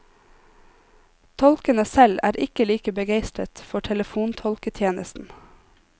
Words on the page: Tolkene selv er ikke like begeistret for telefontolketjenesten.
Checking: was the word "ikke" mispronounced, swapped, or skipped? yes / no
no